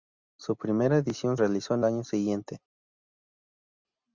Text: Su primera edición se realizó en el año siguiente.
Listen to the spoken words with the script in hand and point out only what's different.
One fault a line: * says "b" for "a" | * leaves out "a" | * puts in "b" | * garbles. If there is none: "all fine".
* leaves out "se"
* leaves out "el"